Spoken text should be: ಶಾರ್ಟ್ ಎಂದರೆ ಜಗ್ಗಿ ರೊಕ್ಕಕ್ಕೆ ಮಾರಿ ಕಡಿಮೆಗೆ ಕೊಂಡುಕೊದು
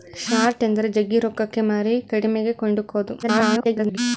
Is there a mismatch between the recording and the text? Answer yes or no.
yes